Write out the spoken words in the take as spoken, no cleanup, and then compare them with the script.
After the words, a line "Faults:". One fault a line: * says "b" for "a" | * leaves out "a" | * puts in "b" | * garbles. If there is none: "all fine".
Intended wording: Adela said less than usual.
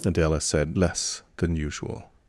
Adela said less than usual.
Faults:
all fine